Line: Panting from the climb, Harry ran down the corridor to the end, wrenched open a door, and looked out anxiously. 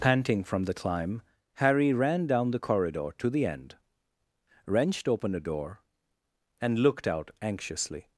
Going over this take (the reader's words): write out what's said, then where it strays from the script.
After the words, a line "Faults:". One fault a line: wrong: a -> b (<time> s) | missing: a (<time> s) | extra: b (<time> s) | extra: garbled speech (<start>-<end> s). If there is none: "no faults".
Panting from the climb, Harry ran down the corridor to the end, wrenched open a door, and looked out anxiously.
Faults:
no faults